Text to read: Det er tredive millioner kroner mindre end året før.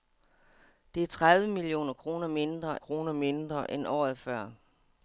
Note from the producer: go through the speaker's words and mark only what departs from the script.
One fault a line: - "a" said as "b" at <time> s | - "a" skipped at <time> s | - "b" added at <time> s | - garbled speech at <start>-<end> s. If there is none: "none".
- "kroner mindre" added at 2.8 s